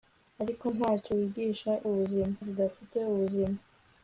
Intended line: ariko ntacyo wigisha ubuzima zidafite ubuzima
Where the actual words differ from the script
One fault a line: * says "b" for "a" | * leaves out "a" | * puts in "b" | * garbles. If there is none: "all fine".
all fine